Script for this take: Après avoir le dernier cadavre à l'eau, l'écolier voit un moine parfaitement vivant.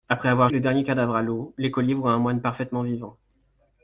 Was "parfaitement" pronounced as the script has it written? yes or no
yes